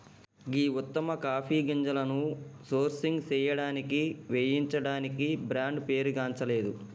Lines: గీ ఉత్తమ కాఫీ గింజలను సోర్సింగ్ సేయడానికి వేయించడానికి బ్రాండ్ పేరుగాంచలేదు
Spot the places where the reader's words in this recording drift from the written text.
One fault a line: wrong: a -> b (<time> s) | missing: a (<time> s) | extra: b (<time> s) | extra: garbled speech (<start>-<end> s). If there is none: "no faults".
no faults